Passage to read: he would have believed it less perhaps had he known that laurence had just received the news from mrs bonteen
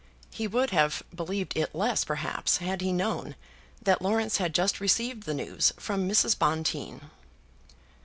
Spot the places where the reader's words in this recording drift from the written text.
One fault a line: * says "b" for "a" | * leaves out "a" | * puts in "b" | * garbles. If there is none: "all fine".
all fine